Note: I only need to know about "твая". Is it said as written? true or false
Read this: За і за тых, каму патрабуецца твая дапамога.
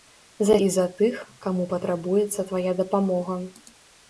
true